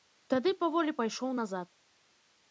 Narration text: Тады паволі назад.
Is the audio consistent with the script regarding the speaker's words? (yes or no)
no